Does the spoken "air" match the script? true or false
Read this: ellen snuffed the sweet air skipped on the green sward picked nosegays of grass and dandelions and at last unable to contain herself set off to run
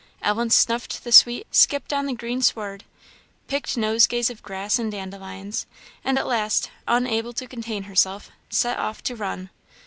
false